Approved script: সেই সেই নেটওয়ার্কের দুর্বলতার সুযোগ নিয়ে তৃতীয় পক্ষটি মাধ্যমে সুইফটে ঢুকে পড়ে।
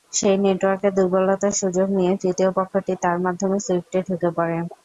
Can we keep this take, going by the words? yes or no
no